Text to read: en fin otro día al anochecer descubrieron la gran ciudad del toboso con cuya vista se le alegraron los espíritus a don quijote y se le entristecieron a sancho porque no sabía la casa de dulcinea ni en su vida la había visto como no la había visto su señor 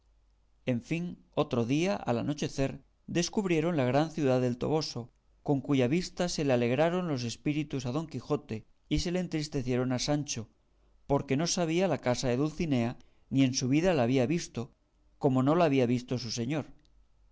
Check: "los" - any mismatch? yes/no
no